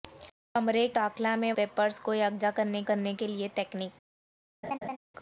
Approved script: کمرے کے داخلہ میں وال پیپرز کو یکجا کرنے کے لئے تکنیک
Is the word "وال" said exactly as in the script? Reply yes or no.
no